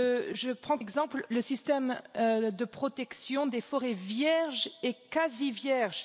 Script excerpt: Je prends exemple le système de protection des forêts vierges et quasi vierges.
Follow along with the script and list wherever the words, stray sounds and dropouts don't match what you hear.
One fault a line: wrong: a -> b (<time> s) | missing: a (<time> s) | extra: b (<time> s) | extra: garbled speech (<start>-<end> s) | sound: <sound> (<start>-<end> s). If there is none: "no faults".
no faults